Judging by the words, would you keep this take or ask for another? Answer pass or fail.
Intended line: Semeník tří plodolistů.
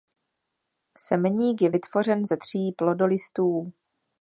fail